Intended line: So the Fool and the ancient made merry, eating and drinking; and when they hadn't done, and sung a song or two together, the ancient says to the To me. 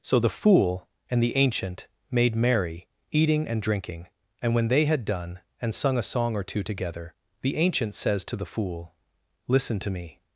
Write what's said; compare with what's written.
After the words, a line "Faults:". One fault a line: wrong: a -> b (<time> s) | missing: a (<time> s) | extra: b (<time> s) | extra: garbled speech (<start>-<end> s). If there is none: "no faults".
So the Fool and the ancient made merry, eating and drinking; and when they had done, and sung a song or two together, the ancient says to the Fool, "Listen to me.
Faults:
wrong: hadn't -> had (4.8 s)
extra: Fool Listen (8.4 s)